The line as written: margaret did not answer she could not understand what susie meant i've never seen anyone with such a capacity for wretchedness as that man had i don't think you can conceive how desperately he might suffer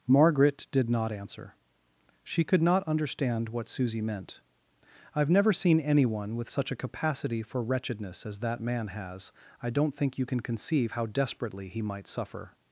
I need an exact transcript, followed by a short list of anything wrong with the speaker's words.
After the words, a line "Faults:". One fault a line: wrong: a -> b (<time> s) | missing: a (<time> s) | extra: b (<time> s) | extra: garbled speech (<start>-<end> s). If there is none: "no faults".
margaret did not answer she could not understand what susie meant i've never seen anyone with such a capacity for wretchedness as that man has i don't think you can conceive how desperately he might suffer
Faults:
wrong: had -> has (8.9 s)